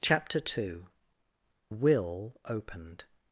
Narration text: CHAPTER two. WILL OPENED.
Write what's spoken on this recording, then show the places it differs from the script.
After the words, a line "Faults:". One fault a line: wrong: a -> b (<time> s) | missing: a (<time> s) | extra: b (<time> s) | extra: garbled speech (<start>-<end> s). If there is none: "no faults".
CHAPTER two. WILL OPENED.
Faults:
no faults